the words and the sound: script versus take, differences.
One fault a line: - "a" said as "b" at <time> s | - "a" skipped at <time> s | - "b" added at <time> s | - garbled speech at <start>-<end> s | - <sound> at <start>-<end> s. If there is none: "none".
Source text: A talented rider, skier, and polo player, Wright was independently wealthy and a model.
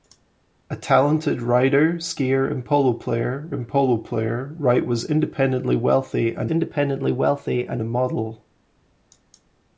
- "and polo player" added at 3.5 s
- "independently wealthy and" added at 6.5 s